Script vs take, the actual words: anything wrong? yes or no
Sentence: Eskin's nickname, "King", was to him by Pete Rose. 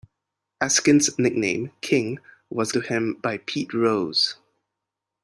no